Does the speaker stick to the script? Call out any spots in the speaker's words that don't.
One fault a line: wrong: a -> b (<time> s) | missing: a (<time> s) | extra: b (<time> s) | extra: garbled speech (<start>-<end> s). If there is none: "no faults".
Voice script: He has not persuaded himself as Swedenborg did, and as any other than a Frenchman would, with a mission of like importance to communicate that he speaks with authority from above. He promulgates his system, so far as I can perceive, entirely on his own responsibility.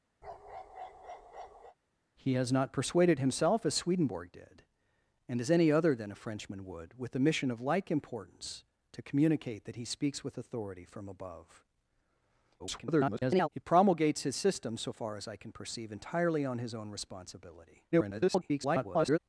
extra: garbled speech (12.6-13.5 s)
extra: garbled speech (17.9-19.2 s)